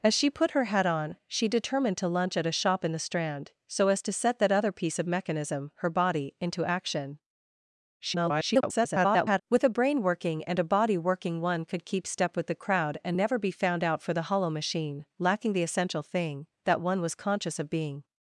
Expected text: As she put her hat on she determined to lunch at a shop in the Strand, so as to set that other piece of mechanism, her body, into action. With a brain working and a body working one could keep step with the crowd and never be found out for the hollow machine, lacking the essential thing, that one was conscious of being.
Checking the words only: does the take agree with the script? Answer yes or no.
no